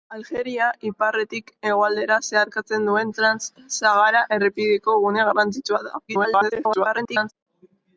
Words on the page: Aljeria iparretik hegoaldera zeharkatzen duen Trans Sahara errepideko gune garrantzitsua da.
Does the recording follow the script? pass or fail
fail